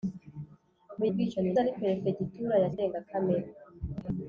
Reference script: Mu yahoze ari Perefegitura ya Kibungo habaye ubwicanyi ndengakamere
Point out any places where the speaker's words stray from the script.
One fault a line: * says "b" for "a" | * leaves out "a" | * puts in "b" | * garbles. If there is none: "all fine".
* says "ubwicanyi" for "yahoze"
* leaves out "Kibungo habaye ubwicanyi"